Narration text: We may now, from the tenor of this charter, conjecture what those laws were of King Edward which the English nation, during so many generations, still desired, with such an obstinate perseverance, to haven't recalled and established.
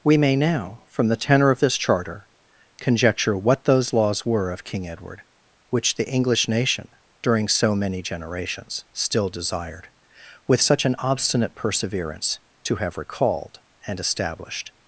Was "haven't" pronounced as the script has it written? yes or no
no